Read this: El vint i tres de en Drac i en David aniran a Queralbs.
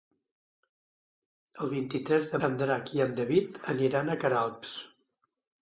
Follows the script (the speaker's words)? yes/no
yes